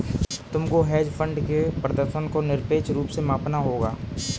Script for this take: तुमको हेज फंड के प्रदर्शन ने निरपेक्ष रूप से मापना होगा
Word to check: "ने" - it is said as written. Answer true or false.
false